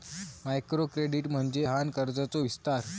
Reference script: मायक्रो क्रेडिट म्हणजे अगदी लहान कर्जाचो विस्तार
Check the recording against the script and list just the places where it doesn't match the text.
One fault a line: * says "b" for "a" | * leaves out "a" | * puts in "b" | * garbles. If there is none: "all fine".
* leaves out "अगदी"